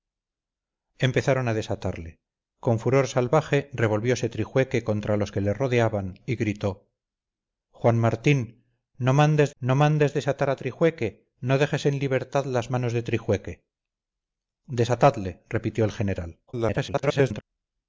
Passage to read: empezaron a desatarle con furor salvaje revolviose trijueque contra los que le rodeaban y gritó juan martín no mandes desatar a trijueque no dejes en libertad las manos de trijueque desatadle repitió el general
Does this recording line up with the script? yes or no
no